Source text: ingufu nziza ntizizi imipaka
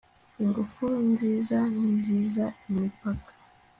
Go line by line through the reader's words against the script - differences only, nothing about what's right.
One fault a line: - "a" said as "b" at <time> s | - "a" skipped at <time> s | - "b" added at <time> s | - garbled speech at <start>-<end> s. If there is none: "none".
none